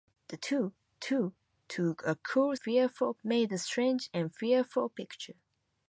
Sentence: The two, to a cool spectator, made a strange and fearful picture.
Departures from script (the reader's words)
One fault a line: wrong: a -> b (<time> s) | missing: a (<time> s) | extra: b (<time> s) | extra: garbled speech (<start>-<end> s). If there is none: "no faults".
extra: two (1.0 s)
wrong: spectator -> fearful (2.6 s)